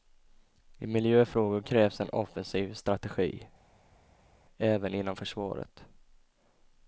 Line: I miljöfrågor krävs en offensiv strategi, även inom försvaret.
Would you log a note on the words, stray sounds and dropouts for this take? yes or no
no